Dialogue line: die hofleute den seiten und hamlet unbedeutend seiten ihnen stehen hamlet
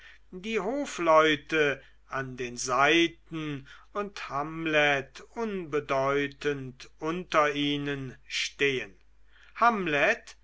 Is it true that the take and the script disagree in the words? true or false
true